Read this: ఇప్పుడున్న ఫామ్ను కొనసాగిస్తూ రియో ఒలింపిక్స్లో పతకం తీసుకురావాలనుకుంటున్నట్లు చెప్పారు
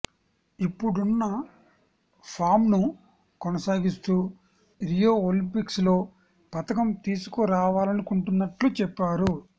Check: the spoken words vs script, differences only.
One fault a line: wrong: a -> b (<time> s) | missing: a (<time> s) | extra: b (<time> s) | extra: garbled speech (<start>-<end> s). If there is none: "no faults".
no faults